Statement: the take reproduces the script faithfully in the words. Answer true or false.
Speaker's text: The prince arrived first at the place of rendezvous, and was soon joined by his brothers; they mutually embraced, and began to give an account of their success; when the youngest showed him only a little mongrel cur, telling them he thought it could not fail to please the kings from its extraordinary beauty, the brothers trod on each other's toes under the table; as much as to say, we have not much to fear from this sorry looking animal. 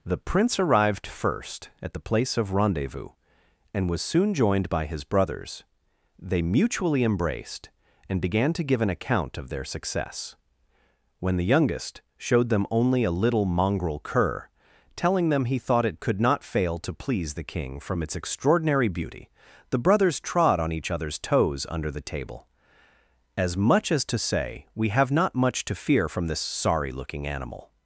false